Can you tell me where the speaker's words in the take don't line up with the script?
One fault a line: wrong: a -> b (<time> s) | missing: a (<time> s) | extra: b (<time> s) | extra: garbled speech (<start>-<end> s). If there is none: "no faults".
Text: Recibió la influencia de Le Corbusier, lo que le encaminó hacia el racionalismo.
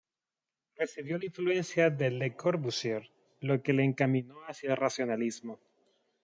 no faults